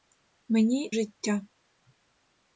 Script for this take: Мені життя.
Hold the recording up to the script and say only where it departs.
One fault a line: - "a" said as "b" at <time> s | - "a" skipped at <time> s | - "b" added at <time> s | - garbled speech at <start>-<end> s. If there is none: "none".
none